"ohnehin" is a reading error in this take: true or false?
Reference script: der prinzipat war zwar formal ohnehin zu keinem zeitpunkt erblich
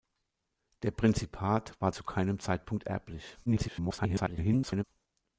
true